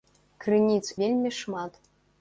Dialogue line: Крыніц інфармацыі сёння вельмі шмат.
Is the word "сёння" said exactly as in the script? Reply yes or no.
no